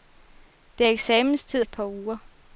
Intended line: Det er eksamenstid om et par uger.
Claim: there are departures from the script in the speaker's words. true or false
true